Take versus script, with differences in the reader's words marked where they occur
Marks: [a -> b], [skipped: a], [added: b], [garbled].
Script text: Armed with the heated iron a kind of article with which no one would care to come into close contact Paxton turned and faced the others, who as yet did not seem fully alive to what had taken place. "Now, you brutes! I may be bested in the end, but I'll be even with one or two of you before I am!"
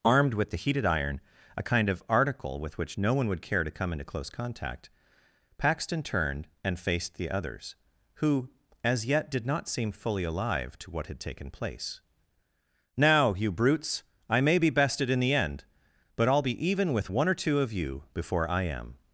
Armed with the heated iron a kind of article with which no one would care to come into close contact Paxton turned and faced the others, who as yet did not seem fully alive to what had taken place. "Now, you brutes! I may be bested in the end, but I'll be even with one or two of you before I am!"